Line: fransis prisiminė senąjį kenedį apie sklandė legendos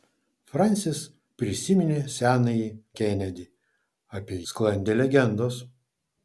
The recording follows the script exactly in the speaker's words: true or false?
true